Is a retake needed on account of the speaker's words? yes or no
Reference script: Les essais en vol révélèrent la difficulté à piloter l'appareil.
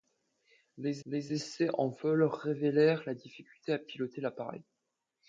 yes